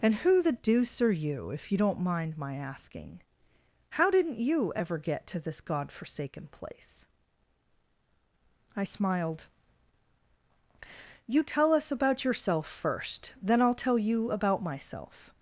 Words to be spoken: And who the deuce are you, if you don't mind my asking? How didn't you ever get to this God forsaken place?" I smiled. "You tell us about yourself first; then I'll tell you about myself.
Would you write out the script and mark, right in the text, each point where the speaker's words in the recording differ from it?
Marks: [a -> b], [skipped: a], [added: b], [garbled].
And who the deuce are you, if you don't mind my asking? How didn't you ever get to this God forsaken place?" I smiled. "You tell us about yourself first; then I'll tell you about myself.